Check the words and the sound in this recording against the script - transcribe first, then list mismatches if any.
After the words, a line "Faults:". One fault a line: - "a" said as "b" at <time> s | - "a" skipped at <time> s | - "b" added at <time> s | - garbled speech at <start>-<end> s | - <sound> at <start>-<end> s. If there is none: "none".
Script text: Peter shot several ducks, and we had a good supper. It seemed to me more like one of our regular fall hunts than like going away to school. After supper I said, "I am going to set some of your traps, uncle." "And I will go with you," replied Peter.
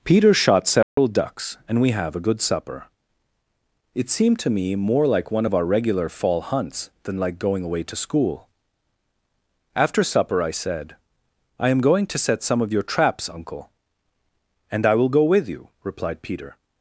Peter shot several ducks, and we have a good supper. It seemed to me more like one of our regular fall hunts than like going away to school. After supper I said, "I am going to set some of your traps, uncle." "And I will go with you," replied Peter.
Faults:
- dropout at 0.8-1.0 s
- "had" said as "have" at 1.9 s